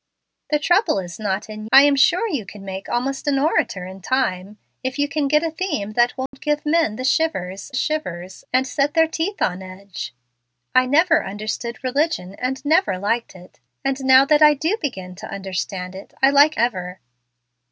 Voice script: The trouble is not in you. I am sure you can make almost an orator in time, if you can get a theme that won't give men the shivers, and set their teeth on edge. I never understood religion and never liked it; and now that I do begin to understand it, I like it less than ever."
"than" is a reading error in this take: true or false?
true